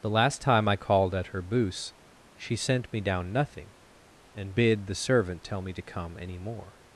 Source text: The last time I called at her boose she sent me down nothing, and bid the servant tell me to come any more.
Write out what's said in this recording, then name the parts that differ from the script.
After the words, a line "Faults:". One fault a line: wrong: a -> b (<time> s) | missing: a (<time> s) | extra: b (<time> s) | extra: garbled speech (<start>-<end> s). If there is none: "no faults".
The last time I called at her boose she sent me down nothing, and bid the servant tell me to come any more.
Faults:
no faults